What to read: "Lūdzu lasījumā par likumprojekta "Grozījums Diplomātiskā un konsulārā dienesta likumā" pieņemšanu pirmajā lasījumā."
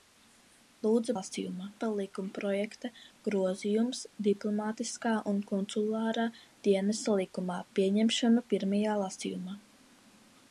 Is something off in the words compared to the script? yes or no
no